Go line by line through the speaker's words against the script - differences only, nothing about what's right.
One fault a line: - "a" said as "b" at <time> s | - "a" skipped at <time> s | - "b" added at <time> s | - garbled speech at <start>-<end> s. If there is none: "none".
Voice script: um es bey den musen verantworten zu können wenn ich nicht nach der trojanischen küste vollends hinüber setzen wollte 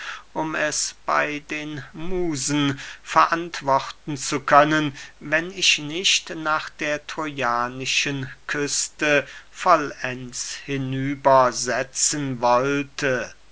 none